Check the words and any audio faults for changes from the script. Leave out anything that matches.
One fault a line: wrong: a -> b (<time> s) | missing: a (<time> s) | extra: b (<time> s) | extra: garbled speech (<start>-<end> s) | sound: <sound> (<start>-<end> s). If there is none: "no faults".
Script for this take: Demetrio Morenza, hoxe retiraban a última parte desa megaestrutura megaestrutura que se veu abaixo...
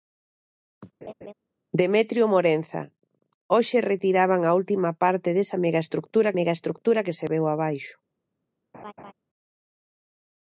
sound: laugh (1.0-1.3 s)
sound: laugh (8.7-9.1 s)